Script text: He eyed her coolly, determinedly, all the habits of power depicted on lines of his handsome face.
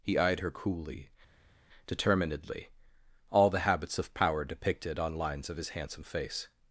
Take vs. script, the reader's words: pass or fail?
pass